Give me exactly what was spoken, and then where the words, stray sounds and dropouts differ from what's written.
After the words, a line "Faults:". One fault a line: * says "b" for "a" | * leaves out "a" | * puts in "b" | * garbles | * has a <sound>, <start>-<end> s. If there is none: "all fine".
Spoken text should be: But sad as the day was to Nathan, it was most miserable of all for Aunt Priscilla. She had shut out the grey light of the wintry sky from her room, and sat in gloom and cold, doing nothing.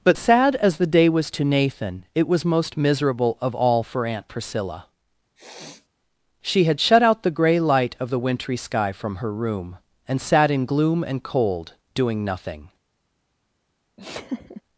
But sad as the day was to Nathan, it was most miserable of all for Aunt Priscilla. She had shut out the grey light of the wintry sky from her room, and sat in gloom and cold, doing nothing.
Faults:
* has a sniff, 5.4-5.9 s
* has a laugh, 14.0-14.6 s